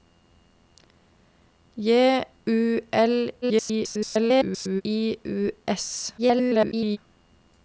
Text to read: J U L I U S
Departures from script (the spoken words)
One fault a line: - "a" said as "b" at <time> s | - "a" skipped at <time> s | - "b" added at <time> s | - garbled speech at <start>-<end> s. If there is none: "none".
- garbled speech at 3.4-4.8 s
- garbled speech at 6.2-7.0 s